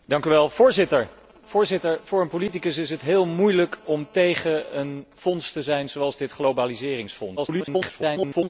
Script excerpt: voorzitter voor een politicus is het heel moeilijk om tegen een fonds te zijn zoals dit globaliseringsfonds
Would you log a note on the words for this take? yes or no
yes